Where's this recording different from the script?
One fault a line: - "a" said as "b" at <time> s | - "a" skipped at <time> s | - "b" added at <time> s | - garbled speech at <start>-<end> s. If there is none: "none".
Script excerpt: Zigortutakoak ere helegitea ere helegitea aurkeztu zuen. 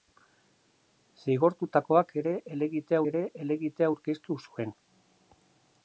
none